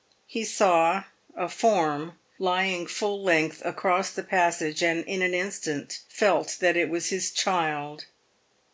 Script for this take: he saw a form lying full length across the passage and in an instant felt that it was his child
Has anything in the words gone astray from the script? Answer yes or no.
no